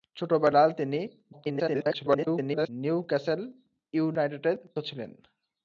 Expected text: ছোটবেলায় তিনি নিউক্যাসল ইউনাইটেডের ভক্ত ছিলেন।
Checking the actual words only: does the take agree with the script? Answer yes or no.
no